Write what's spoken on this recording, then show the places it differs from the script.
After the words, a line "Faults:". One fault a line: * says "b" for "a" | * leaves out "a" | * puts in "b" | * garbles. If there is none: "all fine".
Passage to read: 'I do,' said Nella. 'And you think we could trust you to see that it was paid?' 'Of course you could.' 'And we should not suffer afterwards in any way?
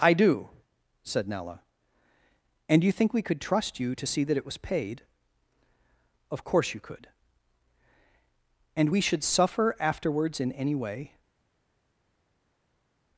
'I do,' said Nella. 'And you think we could trust you to see that it was paid?' 'Of course you could.' 'And we should suffer afterwards in any way?
Faults:
* leaves out "not"